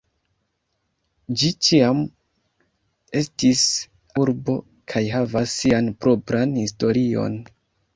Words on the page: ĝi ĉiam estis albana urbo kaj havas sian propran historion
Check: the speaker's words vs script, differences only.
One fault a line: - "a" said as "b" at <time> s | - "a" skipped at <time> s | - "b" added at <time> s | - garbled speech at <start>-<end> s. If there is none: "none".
- "albana" skipped at 3.6 s